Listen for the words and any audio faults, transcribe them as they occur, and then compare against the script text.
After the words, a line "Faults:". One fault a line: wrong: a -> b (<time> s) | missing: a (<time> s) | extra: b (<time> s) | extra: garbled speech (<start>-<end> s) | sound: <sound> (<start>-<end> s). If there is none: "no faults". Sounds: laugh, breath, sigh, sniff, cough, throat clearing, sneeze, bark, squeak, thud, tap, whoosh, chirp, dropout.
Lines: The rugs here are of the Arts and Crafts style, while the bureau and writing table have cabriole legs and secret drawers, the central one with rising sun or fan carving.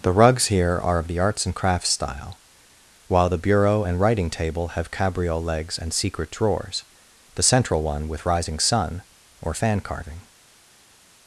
The rugs here are of the Arts and Crafts style, while the bureau and writing table have cabriole legs and secret drawers, the central one with rising sun or fan carving.
Faults:
no faults